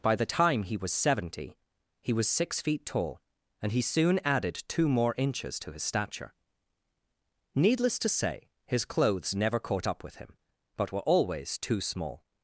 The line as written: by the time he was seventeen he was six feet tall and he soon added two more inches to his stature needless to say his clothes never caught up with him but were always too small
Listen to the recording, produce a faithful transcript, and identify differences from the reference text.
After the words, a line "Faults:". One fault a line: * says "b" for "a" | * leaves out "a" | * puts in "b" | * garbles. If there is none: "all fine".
by the time he was seventy he was six feet tall and he soon added two more inches to his stature needless to say his clothes never caught up with him but were always too small
Faults:
* says "seventy" for "seventeen"